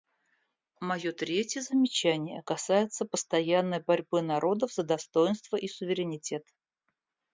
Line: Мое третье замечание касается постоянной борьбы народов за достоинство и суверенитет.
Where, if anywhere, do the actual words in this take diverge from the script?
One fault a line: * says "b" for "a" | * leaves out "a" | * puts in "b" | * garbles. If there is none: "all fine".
all fine